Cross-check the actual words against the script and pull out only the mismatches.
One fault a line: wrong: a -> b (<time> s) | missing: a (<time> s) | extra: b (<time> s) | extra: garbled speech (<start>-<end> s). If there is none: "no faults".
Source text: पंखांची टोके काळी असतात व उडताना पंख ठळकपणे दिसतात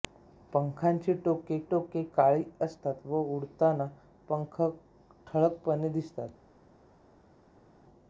extra: टोके (1.7 s)